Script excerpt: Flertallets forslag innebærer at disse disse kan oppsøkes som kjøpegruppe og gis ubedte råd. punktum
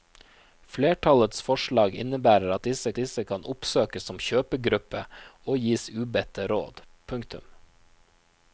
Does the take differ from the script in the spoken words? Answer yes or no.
no